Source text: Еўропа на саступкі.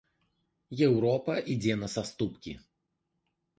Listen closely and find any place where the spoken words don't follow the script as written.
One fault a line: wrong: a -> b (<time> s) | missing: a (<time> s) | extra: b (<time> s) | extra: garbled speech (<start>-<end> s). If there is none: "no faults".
extra: ідзе (1.6 s)